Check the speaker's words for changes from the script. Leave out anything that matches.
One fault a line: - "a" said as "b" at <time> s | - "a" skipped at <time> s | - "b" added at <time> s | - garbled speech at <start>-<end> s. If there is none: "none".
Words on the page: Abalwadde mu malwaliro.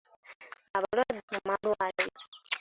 none